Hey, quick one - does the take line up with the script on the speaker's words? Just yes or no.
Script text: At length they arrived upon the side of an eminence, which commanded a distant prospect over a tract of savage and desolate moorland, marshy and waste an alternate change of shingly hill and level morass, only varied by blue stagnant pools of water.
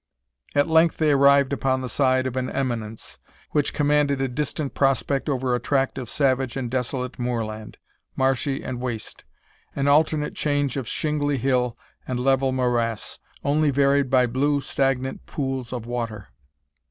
yes